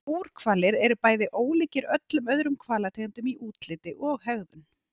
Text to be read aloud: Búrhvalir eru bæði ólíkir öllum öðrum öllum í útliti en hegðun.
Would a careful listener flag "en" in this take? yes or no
yes